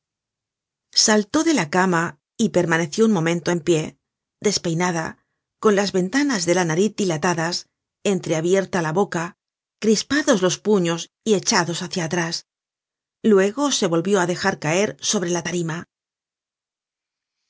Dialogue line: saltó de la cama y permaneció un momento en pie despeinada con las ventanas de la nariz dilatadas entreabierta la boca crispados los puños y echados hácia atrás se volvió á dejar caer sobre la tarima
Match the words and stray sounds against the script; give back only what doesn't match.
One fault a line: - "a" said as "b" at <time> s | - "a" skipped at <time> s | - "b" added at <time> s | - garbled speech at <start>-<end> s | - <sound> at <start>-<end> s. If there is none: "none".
- "luego" added at 13.2 s